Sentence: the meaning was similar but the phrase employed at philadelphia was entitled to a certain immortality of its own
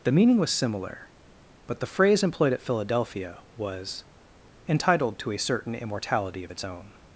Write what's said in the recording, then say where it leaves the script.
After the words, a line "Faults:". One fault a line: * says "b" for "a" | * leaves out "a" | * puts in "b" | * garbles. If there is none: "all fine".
the meaning was similar but the phrase employed at philadelphia was entitled to a certain immortality of its own
Faults:
all fine